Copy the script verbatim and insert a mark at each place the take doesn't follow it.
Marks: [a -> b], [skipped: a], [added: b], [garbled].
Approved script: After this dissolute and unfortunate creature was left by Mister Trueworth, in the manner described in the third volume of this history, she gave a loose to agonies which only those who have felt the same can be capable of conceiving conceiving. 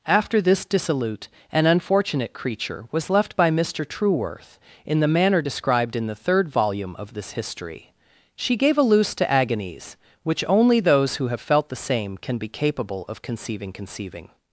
After this dissolute and unfortunate creature was left by Mister Trueworth, in the manner described in the third volume of this history, she gave a loose to agonies which only those who have felt the same can be capable of conceiving conceiving.